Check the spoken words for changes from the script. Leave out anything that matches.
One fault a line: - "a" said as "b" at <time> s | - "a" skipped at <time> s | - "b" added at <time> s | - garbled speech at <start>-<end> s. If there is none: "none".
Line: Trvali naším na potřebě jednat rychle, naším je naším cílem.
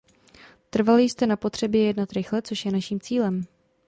- "naším" said as "jste" at 1.0 s
- "naším" said as "což" at 2.4 s